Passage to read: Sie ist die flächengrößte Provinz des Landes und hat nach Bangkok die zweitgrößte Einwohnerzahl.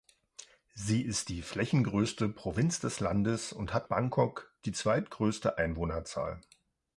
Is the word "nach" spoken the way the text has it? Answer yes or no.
no